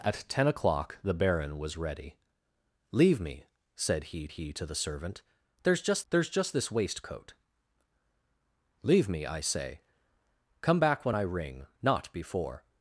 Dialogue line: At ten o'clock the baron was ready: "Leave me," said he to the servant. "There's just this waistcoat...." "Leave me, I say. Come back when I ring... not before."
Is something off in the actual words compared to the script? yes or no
yes